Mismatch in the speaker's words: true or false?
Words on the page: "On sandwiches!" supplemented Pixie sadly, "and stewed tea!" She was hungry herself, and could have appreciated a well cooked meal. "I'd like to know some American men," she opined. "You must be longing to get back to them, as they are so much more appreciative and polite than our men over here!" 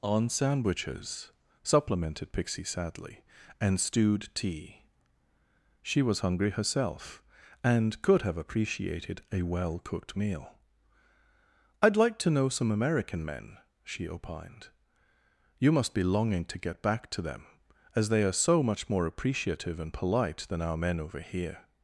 false